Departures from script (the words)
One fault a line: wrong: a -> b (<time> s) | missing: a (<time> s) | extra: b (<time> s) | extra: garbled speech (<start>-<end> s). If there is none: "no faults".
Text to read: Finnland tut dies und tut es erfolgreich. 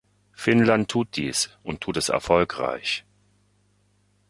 no faults